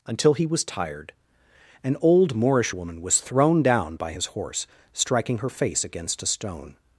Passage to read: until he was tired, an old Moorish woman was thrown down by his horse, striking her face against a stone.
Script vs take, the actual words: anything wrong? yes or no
no